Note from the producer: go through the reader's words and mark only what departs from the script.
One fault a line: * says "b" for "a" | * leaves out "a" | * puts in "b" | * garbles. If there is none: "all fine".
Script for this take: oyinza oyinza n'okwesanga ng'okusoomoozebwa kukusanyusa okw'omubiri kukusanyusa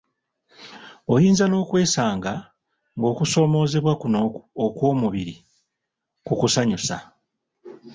* leaves out "oyinza"
* says "kuno" for "kukusanyusa"